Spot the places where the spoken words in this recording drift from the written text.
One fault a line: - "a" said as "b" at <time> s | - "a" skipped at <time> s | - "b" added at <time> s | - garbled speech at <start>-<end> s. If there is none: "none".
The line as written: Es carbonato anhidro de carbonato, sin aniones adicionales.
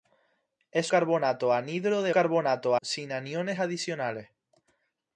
none